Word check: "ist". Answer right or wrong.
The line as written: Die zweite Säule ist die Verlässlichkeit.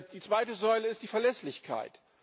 right